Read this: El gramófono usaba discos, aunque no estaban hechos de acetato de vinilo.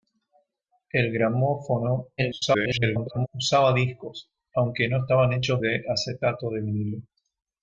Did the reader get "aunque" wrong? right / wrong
right